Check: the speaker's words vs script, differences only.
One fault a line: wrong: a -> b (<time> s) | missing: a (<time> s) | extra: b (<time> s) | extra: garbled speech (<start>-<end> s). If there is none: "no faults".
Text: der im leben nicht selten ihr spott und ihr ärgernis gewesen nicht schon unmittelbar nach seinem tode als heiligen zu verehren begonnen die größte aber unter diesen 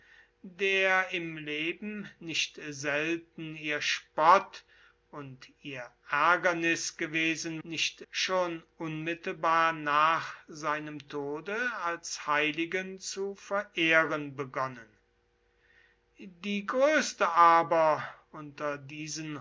no faults